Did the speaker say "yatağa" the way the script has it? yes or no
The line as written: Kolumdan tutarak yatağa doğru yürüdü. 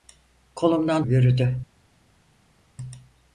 no